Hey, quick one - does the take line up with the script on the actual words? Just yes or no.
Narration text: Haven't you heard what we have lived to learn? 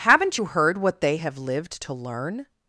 no